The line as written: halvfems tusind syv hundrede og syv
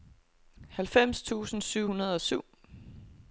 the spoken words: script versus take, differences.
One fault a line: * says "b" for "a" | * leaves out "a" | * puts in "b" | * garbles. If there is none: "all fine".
all fine